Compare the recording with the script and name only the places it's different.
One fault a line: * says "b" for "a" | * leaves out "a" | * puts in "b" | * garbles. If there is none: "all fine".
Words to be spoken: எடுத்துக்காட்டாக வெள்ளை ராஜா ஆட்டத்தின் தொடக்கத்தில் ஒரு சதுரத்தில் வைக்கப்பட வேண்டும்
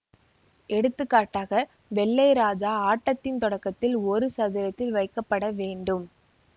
all fine